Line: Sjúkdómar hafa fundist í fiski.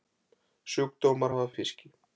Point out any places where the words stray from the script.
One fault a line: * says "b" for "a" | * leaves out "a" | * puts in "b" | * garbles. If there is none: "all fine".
* leaves out "fundist"